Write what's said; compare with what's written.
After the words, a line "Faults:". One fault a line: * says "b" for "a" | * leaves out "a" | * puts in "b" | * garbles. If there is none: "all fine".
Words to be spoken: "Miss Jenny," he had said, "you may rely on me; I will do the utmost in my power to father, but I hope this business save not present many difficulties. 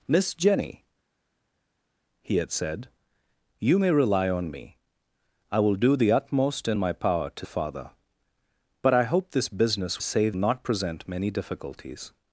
"Miss Jenny," he had said, "you may rely on me; I will do the utmost in my power to father, but I hope this business save not present many difficulties.
Faults:
all fine